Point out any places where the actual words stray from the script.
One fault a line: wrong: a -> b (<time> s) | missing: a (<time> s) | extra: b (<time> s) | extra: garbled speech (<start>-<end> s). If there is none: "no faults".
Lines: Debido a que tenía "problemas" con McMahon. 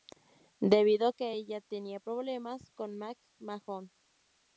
extra: ella (1.3 s)